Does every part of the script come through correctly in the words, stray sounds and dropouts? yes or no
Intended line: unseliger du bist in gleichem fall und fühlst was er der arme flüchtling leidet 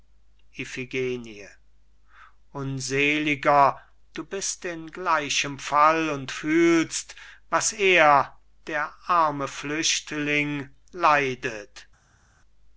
yes